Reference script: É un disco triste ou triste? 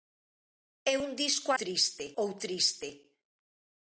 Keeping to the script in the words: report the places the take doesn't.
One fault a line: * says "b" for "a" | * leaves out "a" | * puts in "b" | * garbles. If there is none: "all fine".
all fine